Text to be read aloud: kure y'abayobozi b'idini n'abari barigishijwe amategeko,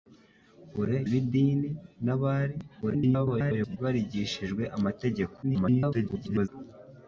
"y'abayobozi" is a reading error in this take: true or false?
true